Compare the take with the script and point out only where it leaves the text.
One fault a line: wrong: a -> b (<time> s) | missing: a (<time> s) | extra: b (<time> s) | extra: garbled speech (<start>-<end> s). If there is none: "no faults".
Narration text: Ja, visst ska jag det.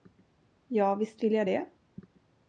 wrong: ska -> vill (1.2 s)